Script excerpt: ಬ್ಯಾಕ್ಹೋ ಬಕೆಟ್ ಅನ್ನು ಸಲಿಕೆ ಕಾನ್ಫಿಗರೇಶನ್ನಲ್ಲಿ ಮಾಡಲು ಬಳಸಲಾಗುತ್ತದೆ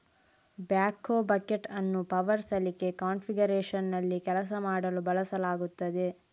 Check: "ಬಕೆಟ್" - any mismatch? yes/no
no